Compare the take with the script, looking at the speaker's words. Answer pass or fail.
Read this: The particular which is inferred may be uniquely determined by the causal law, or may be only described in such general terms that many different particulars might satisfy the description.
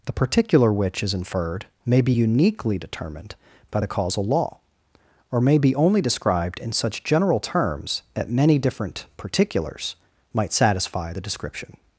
pass